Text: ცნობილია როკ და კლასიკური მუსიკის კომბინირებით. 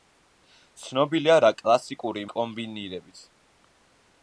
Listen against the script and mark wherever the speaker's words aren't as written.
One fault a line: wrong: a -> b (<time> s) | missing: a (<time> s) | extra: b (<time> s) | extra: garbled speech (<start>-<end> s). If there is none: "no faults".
missing: როკ (1.4 s)
missing: მუსიკის (2.3 s)